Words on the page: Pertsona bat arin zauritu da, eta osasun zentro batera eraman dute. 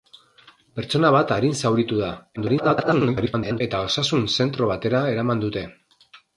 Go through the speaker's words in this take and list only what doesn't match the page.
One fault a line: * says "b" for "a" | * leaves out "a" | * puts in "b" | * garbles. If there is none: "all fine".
* garbles